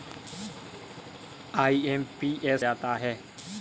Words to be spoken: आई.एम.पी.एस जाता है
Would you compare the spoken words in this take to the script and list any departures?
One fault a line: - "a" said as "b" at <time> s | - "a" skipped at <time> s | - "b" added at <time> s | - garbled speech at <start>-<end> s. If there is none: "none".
none